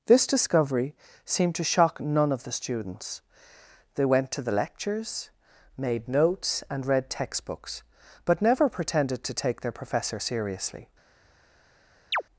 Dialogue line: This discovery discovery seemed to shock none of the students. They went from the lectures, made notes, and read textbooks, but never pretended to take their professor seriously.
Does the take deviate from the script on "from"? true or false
true